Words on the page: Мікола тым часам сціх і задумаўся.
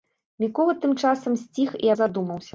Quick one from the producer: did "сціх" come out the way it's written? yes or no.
yes